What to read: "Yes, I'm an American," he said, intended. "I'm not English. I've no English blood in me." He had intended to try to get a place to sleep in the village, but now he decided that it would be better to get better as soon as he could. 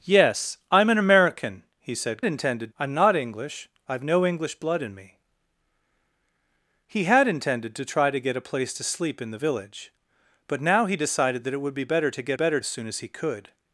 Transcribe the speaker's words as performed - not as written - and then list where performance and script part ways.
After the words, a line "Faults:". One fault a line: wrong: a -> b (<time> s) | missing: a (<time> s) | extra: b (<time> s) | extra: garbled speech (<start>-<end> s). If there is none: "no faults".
"Yes, I'm an American," he said, intended. "I'm not English. I've no English blood in me." He had intended to try to get a place to sleep in the village, but now he decided that it would be better to get better as soon as he could.
Faults:
no faults